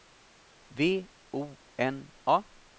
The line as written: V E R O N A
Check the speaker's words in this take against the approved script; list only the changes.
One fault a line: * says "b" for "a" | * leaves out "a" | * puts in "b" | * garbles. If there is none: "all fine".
* leaves out "E R"